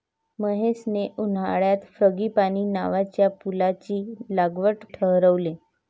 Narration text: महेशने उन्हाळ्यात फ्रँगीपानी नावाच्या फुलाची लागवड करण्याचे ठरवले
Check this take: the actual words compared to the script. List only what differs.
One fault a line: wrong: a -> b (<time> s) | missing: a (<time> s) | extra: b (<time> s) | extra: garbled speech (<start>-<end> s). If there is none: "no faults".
missing: करण्याचे (4.8 s)